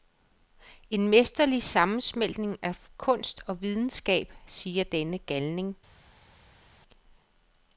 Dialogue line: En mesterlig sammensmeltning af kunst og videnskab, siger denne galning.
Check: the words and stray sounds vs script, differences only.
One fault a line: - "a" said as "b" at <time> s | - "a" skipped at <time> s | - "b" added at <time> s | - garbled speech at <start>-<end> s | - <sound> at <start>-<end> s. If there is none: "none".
none